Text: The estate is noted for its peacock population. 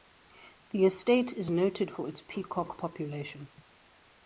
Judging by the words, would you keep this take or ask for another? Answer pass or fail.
pass